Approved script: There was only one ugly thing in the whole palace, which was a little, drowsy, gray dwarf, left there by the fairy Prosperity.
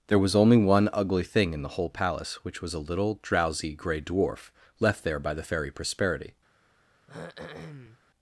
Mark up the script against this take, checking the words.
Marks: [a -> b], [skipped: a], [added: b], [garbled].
There was only one ugly thing in the whole palace, which was a little, drowsy, gray dwarf, left there by the fairy Prosperity.